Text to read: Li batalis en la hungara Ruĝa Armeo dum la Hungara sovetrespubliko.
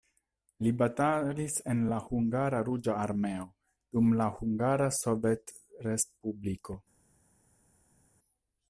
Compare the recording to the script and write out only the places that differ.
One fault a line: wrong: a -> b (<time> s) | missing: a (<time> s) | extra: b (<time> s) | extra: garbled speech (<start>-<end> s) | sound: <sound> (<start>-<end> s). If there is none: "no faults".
no faults